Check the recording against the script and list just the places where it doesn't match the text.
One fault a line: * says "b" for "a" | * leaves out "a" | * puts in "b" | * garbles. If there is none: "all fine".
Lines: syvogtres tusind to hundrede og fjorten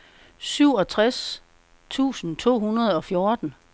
all fine